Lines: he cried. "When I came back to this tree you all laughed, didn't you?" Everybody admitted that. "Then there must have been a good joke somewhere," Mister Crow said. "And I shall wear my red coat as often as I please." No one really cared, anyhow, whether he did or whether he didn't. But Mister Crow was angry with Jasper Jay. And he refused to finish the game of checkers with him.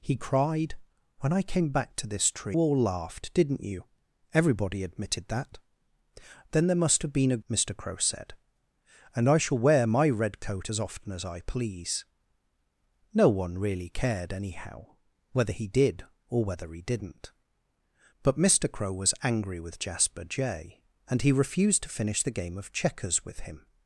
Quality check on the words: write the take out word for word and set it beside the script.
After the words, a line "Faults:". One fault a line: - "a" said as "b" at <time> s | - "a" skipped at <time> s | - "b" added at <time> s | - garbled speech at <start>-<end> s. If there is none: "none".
he cried. "When I came back to this tree all laughed, didn't you?" Everybody admitted that. "Then there must have been a," Mister Crow said. "And I shall wear my red coat as often as I please." No one really cared, anyhow, whether he did or whether he didn't. But Mister Crow was angry with Jasper Jay. And he refused to finish the game of checkers with him.
Faults:
- "you" skipped at 2.6 s
- "good joke somewhere" skipped at 7.4 s